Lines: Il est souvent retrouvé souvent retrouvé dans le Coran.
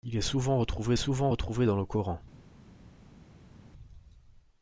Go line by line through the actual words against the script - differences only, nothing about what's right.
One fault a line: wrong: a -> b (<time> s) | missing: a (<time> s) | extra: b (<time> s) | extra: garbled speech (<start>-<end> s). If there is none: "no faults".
no faults